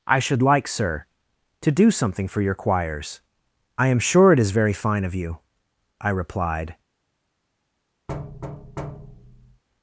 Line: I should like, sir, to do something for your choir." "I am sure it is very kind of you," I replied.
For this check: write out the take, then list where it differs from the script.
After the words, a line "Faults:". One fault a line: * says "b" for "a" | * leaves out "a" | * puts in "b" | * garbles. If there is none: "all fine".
I should like, sir, to do something for your choirs." "I am sure it is very fine of you," I replied.
Faults:
* says "choirs" for "choir"
* says "fine" for "kind"